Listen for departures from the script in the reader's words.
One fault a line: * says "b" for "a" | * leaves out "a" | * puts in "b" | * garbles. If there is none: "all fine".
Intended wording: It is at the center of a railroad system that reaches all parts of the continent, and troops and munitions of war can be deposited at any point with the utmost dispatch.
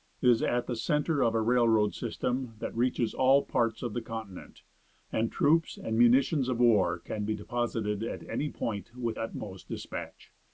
* leaves out "the"